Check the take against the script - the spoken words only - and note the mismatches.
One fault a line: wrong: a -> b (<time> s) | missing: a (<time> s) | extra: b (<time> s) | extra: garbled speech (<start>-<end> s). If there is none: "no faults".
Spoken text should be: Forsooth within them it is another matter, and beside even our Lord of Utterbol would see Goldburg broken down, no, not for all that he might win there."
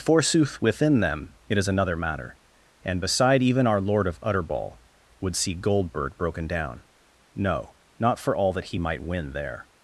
no faults